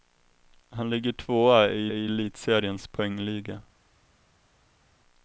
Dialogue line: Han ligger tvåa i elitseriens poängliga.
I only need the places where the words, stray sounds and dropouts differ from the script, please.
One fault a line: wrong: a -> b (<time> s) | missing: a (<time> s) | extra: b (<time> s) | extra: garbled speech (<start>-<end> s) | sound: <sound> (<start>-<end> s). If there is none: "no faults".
extra: i (1.9 s)